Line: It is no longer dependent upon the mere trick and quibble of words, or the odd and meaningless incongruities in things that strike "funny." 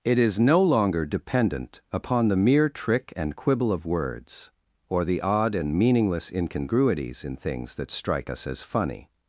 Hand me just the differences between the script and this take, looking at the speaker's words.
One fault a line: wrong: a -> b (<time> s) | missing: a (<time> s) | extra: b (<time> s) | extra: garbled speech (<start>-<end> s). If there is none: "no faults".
extra: us as (8.3 s)